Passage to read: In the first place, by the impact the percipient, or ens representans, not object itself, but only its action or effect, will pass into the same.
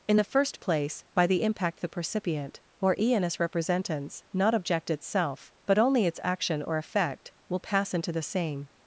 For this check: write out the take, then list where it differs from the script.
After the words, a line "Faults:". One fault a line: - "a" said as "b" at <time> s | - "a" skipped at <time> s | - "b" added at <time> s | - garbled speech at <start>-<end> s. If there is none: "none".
In the first place, by the impact the percipient, or ens representans, not object itself, but only its action or effect, will pass into the same.
Faults:
none